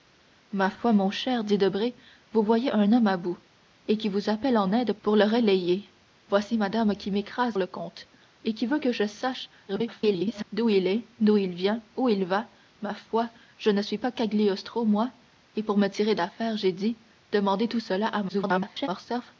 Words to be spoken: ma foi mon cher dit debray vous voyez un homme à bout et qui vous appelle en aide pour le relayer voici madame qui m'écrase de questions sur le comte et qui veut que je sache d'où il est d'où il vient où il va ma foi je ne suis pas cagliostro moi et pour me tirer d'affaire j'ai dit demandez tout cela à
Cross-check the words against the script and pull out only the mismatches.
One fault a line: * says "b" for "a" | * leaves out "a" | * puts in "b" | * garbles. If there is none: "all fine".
* leaves out "de questions sur"
* garbles
* garbles